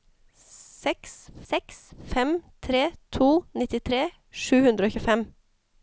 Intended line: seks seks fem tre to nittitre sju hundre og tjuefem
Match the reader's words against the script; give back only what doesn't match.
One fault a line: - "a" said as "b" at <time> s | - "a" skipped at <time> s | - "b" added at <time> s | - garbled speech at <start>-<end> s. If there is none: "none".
none